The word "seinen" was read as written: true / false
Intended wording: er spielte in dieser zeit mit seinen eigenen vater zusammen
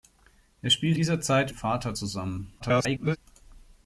false